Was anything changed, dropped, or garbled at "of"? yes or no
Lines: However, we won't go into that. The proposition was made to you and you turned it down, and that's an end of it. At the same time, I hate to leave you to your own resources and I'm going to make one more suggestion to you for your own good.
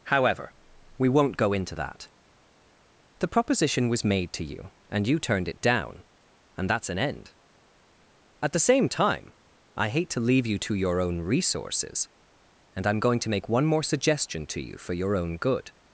yes